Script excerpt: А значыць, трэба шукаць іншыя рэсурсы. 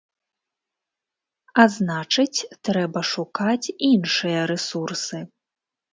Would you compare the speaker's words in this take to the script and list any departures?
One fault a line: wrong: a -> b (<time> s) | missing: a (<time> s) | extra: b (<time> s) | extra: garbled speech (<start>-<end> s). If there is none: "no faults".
no faults